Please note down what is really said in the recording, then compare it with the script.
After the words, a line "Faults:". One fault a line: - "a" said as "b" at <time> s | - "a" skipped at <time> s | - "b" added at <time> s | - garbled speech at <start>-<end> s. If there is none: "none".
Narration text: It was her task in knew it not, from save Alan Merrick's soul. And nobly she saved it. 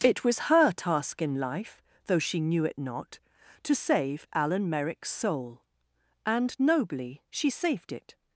It was her task in life, though she knew it not, to save Alan Merrick's soul. And nobly she saved it.
Faults:
- "life though she" added at 1.4 s
- "from" said as "to" at 3.6 s